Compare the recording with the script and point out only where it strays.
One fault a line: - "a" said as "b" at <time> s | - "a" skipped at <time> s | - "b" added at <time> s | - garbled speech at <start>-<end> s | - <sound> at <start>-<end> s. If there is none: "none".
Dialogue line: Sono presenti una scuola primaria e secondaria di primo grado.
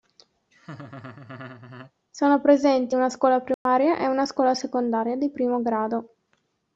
- laugh at 0.5-1.9 s
- dropout at 3.5-3.7 s
- "una scuola" added at 4.1 s